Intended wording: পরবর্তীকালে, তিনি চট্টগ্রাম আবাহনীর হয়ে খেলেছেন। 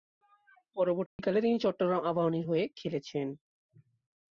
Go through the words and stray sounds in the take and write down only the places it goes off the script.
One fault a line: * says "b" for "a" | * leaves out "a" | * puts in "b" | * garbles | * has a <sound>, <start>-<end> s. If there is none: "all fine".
* has a dropout, 1.1-1.2 s